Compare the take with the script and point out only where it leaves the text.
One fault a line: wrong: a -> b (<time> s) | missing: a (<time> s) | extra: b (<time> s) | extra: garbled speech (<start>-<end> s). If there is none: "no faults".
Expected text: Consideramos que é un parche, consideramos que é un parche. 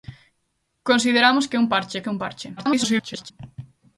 missing: consideramos (2.0 s)
extra: garbled speech (2.6-3.3 s)